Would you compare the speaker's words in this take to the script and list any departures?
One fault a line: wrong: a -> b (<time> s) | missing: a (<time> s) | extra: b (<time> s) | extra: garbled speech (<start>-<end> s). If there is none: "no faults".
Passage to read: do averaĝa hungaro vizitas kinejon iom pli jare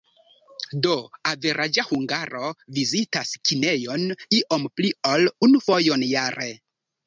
extra: ol unu fojon (5.2 s)